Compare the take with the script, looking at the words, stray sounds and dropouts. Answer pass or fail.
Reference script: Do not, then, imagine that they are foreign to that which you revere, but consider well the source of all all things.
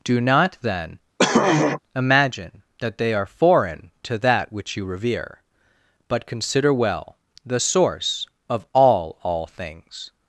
fail